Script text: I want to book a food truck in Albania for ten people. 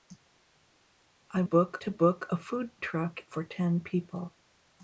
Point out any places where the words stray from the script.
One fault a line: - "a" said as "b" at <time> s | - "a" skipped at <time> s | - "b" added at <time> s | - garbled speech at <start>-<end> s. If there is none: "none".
- "want" said as "book" at 1.4 s
- "in Albania" skipped at 3.2 s